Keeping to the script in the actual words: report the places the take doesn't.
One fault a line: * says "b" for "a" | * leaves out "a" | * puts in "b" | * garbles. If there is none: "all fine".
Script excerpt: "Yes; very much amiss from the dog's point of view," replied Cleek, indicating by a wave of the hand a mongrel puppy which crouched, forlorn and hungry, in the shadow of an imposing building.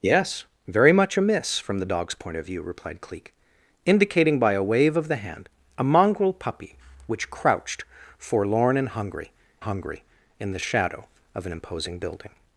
* puts in "hungry"